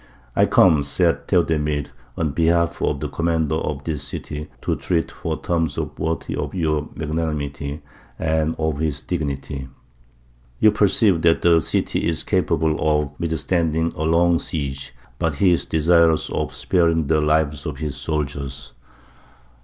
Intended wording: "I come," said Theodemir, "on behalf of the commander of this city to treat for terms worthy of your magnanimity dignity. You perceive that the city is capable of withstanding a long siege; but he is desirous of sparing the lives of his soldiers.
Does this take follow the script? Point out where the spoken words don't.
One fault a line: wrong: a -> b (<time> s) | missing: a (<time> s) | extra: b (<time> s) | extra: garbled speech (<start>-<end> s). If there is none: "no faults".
extra: and of his (8.2 s)